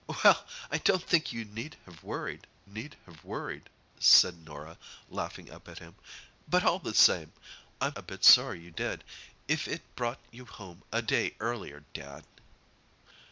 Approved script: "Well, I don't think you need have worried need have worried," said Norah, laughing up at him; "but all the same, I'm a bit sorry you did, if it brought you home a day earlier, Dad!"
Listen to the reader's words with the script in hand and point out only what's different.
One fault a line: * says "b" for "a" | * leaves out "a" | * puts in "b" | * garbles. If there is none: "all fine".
all fine